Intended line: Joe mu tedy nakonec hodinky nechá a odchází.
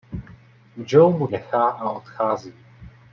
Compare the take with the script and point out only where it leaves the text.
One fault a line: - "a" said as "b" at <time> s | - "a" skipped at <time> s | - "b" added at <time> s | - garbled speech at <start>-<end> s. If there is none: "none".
- "tedy nakonec hodinky" skipped at 1.3 s